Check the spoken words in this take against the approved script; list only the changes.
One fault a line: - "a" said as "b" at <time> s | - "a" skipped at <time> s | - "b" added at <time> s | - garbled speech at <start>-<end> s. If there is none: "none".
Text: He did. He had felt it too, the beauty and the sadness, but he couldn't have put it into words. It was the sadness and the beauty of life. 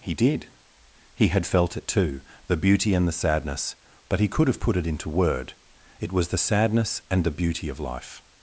- "couldn't" said as "could" at 4.3 s
- "words" said as "word" at 5.1 s